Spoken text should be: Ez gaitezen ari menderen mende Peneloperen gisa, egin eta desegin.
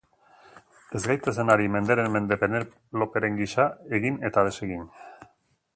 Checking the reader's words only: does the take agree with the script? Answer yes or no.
yes